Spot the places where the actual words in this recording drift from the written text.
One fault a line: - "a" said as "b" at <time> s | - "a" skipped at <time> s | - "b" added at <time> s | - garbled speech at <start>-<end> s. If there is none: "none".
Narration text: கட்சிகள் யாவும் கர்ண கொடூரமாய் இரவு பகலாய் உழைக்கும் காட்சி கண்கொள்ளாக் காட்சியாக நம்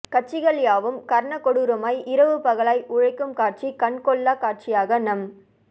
none